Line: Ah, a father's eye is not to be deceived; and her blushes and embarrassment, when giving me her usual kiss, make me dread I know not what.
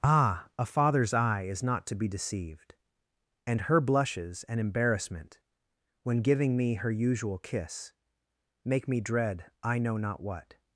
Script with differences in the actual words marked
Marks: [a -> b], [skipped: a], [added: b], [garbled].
Ah, a father's eye is not to be deceived; and her blushes and embarrassment, when giving me her usual kiss, make me dread I know not what.